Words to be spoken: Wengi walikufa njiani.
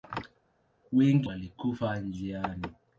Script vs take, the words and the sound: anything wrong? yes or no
no